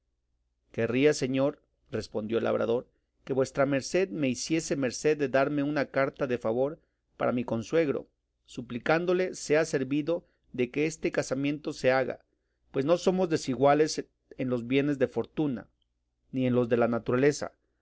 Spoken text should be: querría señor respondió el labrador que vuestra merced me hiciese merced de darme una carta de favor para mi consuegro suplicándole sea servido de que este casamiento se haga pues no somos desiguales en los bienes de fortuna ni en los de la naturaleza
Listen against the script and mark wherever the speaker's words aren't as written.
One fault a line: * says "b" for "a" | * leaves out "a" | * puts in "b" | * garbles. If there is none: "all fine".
all fine